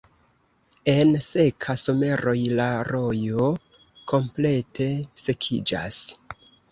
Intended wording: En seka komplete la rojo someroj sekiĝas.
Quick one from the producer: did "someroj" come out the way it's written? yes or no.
no